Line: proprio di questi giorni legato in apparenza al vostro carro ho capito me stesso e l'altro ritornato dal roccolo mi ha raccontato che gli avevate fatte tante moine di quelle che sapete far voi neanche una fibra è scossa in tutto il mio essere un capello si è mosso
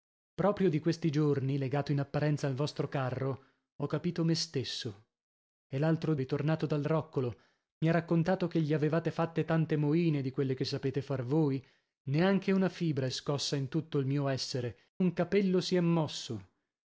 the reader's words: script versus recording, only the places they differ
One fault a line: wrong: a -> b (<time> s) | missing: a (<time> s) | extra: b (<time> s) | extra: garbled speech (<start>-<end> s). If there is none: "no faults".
no faults